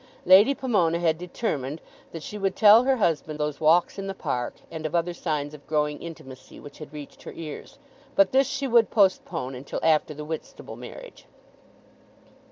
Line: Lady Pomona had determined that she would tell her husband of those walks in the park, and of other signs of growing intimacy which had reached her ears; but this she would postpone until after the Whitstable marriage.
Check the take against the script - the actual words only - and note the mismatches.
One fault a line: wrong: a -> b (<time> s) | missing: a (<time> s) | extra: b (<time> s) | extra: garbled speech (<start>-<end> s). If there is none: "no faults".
missing: of (3.4 s)